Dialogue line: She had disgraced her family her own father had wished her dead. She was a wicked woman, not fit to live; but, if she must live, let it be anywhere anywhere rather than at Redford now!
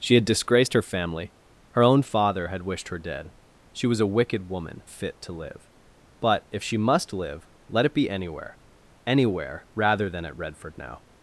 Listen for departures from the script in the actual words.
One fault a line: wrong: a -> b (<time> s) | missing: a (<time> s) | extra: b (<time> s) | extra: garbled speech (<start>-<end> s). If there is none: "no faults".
missing: not (4.8 s)